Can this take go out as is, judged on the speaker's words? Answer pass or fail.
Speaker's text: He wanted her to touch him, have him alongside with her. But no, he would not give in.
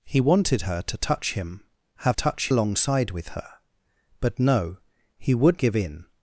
fail